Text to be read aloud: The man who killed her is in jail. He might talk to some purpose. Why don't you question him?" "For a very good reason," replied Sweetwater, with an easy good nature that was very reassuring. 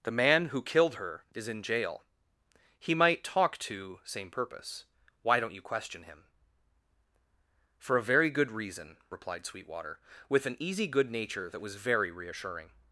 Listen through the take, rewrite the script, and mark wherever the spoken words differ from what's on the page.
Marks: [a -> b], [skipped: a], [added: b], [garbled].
The man who killed her is in jail. He might talk to [some -> same] purpose. Why don't you question him?" "For a very good reason," replied Sweetwater, with an easy good nature that was very reassuring.